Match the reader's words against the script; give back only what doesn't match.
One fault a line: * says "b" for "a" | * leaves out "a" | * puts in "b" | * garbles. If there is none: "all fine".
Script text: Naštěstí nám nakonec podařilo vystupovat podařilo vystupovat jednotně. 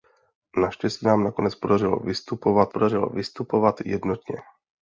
all fine